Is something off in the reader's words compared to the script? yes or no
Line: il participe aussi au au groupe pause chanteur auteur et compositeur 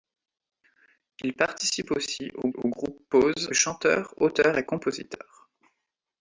no